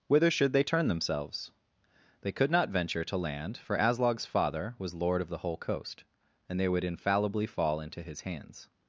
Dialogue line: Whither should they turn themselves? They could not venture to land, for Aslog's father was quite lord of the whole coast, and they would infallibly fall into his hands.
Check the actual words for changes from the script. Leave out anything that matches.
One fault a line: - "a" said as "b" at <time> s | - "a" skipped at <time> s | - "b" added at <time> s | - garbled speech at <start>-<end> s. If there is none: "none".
- "quite" skipped at 4.9 s